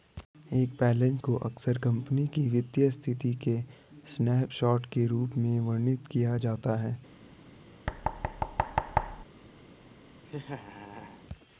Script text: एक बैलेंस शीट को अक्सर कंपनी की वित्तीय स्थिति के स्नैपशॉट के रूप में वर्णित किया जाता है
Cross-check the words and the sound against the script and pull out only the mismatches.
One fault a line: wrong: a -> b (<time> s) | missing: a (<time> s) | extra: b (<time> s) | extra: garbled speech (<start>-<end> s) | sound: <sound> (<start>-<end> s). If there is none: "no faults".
missing: शीट (1.2 s)
sound: thud (7.9-9.2 s)
sound: laugh (10.3-11.2 s)